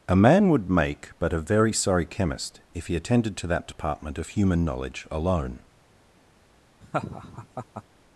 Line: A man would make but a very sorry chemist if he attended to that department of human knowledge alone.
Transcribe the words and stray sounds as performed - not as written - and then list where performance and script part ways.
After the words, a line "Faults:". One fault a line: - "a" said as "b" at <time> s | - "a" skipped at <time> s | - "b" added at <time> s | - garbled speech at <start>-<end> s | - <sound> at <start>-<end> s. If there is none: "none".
A man would make but a very sorry chemist if he attended to that department of human knowledge alone.
Faults:
- laugh at 6.8-7.8 s